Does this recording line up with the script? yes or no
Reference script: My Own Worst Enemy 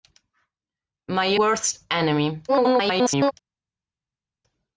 no